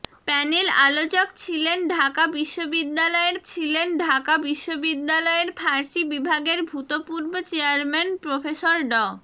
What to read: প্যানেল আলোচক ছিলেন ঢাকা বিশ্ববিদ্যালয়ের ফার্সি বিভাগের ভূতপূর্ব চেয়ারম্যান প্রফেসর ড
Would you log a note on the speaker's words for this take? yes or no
yes